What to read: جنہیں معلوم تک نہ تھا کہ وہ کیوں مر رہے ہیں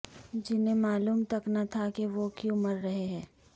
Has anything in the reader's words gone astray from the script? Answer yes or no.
no